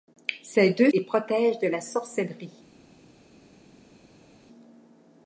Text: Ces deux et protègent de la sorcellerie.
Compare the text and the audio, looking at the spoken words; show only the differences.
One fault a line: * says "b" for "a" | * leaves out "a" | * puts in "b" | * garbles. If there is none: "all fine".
all fine